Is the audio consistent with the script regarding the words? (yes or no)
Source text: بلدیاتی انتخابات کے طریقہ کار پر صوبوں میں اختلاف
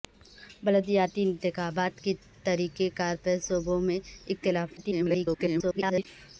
no